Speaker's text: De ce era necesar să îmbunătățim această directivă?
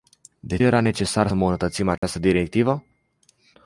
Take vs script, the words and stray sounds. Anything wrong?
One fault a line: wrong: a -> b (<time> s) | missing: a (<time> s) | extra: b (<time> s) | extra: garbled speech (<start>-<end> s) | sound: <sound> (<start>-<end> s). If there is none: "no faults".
missing: ce (0.6 s)
missing: să (1.3 s)
sound: dropout (2.0-2.0 s)